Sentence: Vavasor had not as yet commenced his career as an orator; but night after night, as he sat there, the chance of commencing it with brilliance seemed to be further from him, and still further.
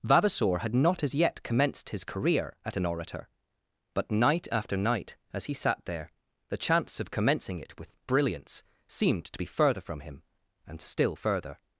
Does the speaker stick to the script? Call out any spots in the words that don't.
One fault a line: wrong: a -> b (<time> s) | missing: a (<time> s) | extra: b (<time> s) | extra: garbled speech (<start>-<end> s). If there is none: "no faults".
wrong: as -> at (2.6 s)